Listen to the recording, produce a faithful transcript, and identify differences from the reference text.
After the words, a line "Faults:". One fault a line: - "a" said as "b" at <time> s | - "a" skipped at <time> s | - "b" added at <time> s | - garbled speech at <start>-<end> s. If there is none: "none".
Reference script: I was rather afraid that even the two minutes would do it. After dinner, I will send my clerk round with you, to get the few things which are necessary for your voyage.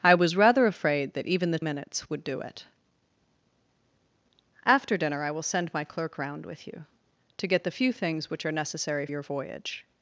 I was rather afraid that even the minutes would do it. After dinner, I will send my clerk round with you, to get the few things which are necessary your voyage.
Faults:
- "two" skipped at 1.6 s
- "for" skipped at 9.1 s